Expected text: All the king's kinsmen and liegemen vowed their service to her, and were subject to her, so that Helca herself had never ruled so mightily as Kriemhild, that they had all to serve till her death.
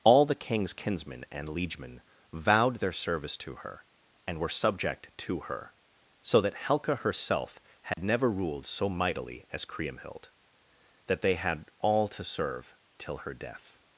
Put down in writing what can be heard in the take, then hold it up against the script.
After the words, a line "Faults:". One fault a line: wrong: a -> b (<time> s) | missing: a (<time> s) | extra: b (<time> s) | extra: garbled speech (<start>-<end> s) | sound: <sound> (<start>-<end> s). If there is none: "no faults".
All the king's kinsmen and liegemen vowed their service to her, and were subject to her, so that Helca herself had never ruled so mightily as Kriemhild, that they had all to serve till her death.
Faults:
sound: dropout (7.9-8.0 s)